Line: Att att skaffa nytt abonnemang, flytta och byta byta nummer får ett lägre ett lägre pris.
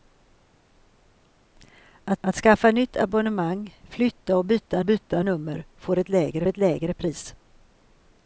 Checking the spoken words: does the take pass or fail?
pass